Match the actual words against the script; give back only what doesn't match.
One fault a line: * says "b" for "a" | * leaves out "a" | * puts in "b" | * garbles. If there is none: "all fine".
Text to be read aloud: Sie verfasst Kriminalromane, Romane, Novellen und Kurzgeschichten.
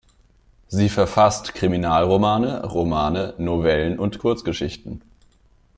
all fine